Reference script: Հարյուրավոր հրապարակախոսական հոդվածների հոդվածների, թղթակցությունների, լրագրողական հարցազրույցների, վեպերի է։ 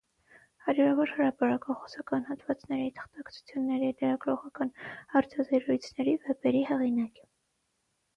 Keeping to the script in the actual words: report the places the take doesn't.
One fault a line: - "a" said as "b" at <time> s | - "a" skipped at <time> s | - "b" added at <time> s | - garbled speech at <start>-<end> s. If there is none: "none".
- "հոդվածների" skipped at 2.9 s
- "հեղինակ" added at 6.7 s